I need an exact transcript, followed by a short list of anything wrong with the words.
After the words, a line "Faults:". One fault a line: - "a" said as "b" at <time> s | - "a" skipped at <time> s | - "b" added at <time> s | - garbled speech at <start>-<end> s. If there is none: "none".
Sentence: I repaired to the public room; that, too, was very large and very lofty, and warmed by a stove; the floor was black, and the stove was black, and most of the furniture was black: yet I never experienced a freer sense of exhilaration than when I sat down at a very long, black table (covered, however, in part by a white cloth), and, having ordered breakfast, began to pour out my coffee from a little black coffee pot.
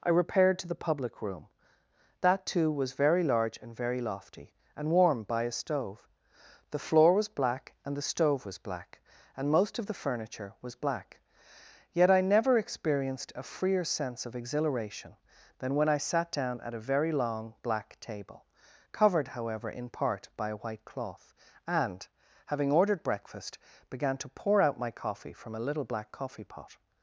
I repaired to the public room; that, too, was very large and very lofty, and warmed by a stove; the floor was black, and the stove was black, and most of the furniture was black: yet I never experienced a freer sense of exhilaration than when I sat down at a very long, black table (covered, however, in part by a white cloth), and, having ordered breakfast, began to pour out my coffee from a little black coffee pot.
Faults:
none